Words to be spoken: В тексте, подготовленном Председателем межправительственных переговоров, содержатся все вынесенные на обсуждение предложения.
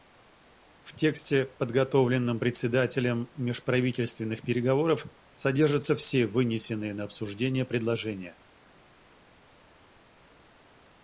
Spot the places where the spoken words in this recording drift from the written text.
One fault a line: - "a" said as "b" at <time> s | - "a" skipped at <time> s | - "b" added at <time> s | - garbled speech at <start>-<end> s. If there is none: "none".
none